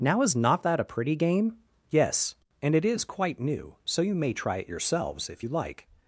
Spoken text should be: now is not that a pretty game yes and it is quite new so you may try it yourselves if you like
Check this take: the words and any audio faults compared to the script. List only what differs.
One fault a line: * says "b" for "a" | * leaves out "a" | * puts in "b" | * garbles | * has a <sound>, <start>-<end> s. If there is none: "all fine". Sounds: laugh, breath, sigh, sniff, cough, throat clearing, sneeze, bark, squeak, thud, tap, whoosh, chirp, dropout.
all fine